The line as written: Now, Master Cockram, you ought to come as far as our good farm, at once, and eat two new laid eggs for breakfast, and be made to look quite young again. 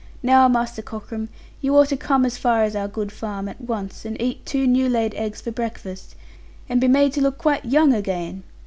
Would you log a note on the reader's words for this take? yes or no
no